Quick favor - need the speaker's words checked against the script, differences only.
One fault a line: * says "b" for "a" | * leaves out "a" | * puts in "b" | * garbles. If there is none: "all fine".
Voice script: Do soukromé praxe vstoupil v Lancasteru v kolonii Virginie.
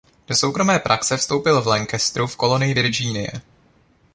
all fine